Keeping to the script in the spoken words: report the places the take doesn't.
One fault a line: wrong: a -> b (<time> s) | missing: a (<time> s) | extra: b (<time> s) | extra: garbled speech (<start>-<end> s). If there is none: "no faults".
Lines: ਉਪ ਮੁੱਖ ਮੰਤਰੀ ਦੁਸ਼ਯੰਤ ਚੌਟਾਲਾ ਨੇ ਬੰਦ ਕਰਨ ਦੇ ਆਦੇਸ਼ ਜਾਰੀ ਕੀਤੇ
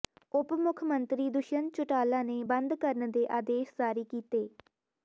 no faults